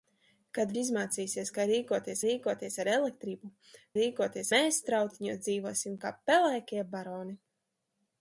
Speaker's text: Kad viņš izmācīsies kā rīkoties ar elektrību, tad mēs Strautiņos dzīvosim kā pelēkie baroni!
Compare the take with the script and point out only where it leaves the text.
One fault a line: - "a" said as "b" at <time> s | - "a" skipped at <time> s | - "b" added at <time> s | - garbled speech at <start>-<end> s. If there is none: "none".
- "viņš" skipped at 0.7 s
- "rīkoties" added at 2.3 s
- "tad" said as "rīkoties" at 4.0 s